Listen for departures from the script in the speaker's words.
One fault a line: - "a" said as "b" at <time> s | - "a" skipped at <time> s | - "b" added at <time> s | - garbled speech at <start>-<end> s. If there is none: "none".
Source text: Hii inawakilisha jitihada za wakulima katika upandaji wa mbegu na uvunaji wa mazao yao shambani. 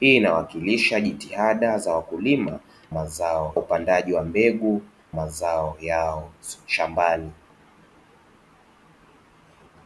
- "katika" said as "mazao" at 2.9 s
- "na uvunaji wa" skipped at 4.8 s